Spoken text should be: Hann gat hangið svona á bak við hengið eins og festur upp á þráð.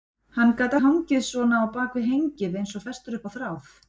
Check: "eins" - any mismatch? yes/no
no